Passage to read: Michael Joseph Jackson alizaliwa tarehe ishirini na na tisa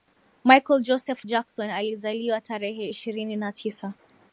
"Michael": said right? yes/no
yes